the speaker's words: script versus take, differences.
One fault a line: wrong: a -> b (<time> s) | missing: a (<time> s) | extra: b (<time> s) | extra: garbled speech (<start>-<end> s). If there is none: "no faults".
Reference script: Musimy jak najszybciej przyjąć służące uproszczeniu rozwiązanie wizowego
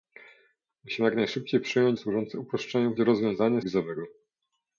no faults